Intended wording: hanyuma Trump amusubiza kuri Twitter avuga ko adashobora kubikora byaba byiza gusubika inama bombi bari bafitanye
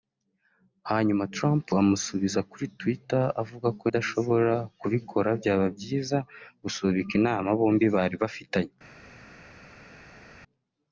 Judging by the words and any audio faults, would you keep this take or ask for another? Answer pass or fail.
pass